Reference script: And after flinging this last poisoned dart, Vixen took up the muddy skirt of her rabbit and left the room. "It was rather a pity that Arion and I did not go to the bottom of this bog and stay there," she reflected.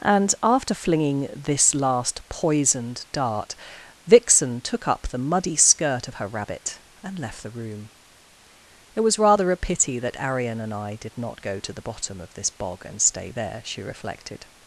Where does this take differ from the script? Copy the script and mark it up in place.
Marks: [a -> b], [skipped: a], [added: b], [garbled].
And after flinging this last poisoned dart, Vixen took up the muddy skirt of her rabbit and left the room. "It was rather a pity that Arion and I did not go to the bottom of this bog and stay there," she reflected.